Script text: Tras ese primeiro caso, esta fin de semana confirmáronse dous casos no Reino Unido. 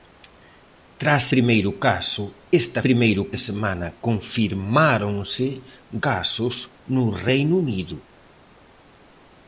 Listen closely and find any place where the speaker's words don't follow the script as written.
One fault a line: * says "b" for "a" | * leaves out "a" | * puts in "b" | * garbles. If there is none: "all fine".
* leaves out "ese"
* says "primeiro" for "fin"
* leaves out "dous"